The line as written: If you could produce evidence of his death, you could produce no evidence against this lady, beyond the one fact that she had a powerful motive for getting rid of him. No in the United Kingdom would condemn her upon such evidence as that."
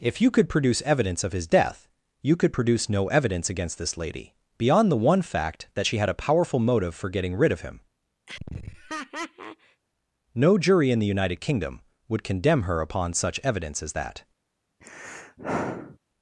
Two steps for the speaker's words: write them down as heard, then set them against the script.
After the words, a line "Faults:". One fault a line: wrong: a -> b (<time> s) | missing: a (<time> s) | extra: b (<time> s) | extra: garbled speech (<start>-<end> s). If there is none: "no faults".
If you could produce evidence of his death, you could produce no evidence against this lady, beyond the one fact that she had a powerful motive for getting rid of him. No jury in the United Kingdom would condemn her upon such evidence as that."
Faults:
extra: jury (10.6 s)